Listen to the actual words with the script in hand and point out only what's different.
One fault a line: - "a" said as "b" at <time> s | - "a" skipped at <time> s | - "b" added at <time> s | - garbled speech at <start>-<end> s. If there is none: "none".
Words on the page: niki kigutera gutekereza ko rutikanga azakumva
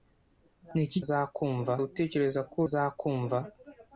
- "kigutera" said as "azakumva" at 1.0 s
- "rutikanga" skipped at 2.6 s